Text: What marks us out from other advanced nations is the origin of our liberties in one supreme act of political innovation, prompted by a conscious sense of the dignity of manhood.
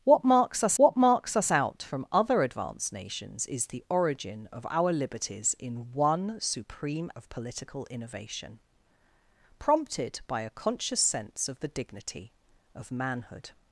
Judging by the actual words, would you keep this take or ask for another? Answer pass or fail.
fail